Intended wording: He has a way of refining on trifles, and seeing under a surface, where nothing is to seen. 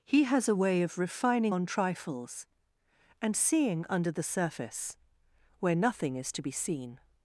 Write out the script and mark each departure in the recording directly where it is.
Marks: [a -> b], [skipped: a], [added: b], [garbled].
He has a way of refining on trifles, and seeing under [a -> the] surface, where nothing is to [added: be] seen.